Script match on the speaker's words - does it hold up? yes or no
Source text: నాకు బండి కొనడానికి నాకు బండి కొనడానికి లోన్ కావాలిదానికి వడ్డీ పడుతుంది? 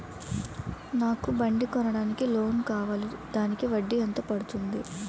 no